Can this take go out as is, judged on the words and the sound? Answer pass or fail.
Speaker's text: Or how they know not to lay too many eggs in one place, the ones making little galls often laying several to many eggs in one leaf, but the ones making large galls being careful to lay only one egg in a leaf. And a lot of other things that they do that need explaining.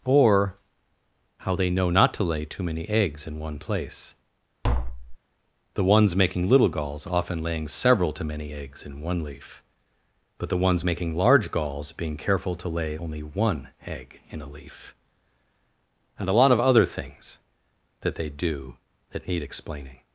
fail